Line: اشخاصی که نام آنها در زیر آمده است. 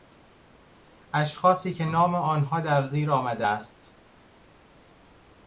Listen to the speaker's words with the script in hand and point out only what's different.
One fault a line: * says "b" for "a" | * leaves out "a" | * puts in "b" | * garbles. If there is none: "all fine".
all fine